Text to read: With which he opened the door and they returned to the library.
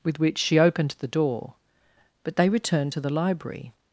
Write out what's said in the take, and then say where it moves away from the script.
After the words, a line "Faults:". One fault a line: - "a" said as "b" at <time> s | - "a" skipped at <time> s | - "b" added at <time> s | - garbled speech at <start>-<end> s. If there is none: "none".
With which she opened the door but they returned to the library.
Faults:
- "he" said as "she" at 0.4 s
- "and" said as "but" at 2.2 s